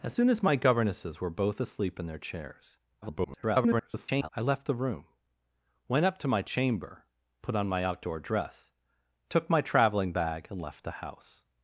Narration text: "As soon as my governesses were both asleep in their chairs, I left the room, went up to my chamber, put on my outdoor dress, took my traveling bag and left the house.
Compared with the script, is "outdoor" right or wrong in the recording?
right